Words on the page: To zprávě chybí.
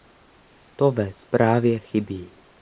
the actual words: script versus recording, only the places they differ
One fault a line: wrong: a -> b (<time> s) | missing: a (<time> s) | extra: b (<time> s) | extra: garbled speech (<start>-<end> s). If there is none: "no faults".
extra: ve (0.9 s)